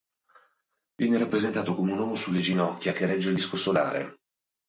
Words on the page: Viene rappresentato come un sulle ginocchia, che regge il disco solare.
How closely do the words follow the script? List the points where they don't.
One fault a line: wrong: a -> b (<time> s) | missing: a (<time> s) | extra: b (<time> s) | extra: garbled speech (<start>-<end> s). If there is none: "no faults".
extra: uomo (2.0 s)